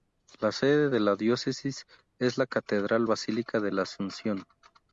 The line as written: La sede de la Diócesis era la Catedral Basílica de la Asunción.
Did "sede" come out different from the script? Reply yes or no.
no